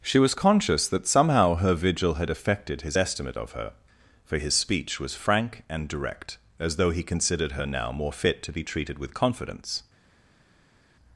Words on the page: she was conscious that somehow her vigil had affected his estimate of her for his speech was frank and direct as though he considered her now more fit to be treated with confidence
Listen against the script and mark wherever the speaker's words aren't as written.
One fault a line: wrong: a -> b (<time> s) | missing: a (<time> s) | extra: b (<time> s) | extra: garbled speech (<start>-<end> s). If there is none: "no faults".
no faults